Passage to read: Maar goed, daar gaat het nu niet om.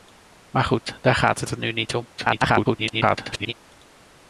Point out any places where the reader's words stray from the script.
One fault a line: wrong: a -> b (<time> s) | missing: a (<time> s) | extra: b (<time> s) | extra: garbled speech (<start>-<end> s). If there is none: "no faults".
extra: het (1.5 s)
extra: garbled speech (2.2-3.5 s)